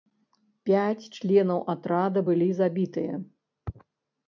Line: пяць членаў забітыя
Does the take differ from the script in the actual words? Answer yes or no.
yes